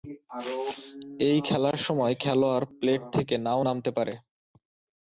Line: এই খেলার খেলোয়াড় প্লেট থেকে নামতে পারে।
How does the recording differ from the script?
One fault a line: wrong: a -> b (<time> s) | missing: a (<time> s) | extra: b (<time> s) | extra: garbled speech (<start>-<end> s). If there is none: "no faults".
extra: সময় (1.8 s)
extra: না-ও (3.4 s)